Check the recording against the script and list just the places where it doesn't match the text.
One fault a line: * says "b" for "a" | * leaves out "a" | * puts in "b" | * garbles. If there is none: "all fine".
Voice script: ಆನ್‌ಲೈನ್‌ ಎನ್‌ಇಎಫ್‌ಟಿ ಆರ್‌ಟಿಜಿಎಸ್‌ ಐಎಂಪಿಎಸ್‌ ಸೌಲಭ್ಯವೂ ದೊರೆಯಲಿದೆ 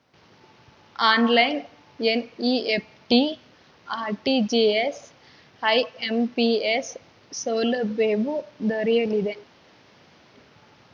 all fine